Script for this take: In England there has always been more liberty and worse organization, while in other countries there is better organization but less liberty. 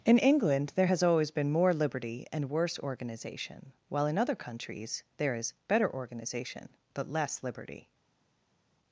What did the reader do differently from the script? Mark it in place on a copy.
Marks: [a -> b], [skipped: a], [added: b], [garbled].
In England there has always been more liberty and worse organization, while in other countries there is better organization but less liberty.